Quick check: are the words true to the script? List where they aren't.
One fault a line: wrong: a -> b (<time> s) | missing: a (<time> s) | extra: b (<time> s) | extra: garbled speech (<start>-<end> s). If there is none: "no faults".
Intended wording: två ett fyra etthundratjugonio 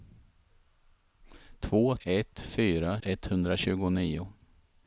no faults